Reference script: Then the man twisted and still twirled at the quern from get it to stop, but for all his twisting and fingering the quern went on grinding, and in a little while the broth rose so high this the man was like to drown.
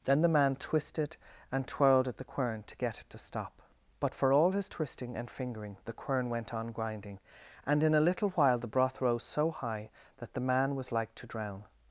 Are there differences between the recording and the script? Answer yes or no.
yes